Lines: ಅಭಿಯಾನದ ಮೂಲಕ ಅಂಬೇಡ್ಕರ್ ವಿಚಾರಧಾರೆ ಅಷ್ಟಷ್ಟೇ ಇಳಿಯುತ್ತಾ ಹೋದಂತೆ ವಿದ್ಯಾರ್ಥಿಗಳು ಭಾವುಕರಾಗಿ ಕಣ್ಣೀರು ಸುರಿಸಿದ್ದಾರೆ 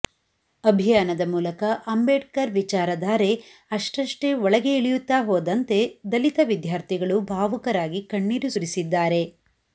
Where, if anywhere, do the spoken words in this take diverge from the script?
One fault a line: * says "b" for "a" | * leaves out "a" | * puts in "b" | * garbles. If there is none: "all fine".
* puts in "ಒಳಗೆ"
* puts in "ದಲಿತ"